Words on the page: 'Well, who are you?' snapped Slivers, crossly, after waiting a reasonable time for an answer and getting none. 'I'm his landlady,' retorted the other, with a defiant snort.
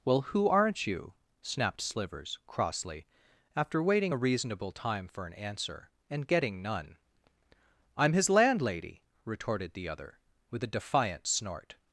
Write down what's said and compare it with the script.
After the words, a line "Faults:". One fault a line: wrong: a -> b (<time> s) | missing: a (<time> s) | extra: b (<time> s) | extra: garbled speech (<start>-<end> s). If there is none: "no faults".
'Well, who aren't you?' snapped Slivers, crossly, after waiting a reasonable time for an answer and getting none. 'I'm his landlady,' retorted the other, with a defiant snort.
Faults:
wrong: are -> aren't (0.5 s)